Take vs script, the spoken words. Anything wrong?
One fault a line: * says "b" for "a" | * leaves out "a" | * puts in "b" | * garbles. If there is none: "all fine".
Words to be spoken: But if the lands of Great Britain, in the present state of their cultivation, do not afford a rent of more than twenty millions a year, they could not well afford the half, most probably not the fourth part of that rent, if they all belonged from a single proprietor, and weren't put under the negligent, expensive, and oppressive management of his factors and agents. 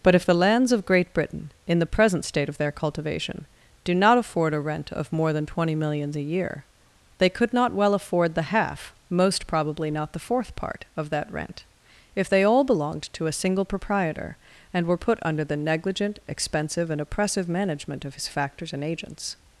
* says "to" for "from"
* says "were" for "weren't"